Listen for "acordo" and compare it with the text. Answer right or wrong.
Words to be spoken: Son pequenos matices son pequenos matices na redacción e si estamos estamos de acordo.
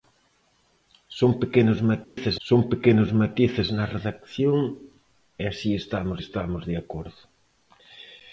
right